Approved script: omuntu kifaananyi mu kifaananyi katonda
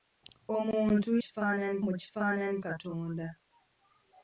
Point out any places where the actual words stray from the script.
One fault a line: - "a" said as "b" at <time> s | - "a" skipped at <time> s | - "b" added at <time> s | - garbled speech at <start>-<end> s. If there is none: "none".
none